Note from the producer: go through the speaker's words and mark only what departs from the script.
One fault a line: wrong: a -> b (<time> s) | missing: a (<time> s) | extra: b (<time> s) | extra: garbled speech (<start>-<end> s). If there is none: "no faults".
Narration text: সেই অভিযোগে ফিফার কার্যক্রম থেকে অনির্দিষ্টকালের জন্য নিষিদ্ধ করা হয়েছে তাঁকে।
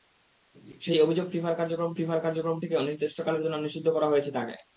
extra: ফিফার কার্যক্রম (2.0 s)